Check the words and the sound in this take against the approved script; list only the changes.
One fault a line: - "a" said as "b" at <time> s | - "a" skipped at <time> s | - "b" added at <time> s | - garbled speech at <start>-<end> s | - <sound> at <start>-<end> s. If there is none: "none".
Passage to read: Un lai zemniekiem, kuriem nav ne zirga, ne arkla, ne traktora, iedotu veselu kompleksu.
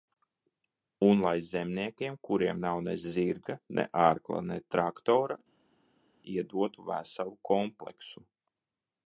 none